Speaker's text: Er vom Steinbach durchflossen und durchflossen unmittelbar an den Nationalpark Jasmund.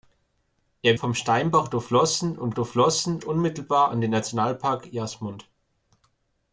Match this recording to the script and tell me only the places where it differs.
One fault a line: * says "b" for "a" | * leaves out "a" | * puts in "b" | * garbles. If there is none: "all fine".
all fine